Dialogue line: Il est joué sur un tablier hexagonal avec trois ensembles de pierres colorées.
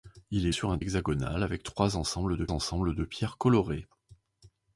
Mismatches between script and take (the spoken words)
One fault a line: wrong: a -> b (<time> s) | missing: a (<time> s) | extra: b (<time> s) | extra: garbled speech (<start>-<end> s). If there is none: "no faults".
missing: joué (0.5 s)
missing: tablier (0.8 s)
extra: ensembles de (2.5 s)